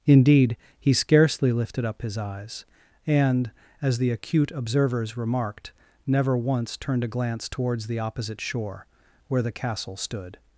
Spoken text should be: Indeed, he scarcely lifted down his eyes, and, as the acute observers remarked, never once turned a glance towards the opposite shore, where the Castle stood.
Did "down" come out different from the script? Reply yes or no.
yes